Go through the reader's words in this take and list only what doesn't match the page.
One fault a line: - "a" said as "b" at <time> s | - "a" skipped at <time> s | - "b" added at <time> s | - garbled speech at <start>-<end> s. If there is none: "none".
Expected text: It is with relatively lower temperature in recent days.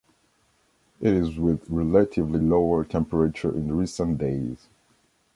none